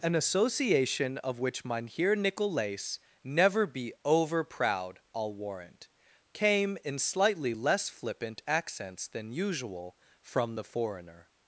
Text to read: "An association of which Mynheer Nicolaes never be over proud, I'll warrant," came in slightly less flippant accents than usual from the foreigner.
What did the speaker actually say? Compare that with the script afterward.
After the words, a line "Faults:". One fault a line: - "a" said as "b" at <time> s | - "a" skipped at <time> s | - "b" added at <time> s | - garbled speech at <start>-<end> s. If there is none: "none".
"An association of which Mynheer Nicolaes never be over proud, I'll warrant," came in slightly less flippant accents than usual from the foreigner.
Faults:
none